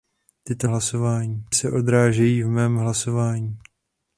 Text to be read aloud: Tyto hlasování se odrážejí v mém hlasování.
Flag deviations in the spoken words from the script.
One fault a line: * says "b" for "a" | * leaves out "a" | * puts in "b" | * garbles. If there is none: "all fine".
all fine